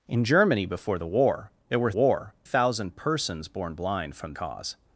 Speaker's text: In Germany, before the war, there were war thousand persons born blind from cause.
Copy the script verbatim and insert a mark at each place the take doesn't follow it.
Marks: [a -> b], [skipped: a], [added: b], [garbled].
In Germany, before the war, there were war thousand persons born blind from cause.